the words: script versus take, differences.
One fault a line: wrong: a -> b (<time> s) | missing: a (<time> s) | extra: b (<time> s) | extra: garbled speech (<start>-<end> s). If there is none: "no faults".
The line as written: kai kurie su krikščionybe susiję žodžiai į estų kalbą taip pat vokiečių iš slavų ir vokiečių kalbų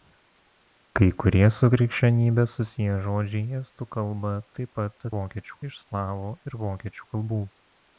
no faults